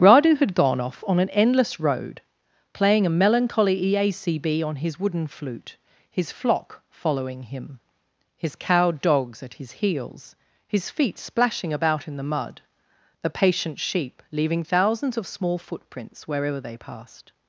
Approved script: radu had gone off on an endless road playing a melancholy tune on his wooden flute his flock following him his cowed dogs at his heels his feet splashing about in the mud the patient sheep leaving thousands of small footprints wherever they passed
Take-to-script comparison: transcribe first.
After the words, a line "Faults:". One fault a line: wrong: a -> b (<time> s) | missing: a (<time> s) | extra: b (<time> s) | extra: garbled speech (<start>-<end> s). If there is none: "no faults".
radu had gone off on an endless road playing a melancholy eacb on his wooden flute his flock following him his cowed dogs at his heels his feet splashing about in the mud the patient sheep leaving thousands of small footprints wherever they passed
Faults:
wrong: tune -> eacb (3.8 s)